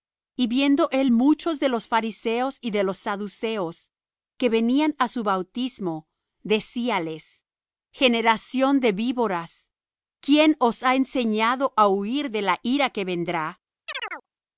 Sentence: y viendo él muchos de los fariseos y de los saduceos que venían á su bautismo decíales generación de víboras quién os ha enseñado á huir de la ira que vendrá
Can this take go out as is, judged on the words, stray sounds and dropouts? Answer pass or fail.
fail